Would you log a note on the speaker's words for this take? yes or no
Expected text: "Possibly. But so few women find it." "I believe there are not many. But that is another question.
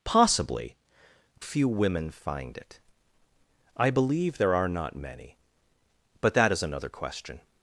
yes